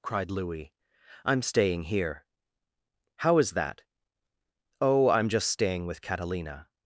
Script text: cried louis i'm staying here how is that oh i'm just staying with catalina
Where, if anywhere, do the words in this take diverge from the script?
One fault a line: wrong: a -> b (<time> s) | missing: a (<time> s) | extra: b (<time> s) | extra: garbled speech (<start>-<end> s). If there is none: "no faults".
no faults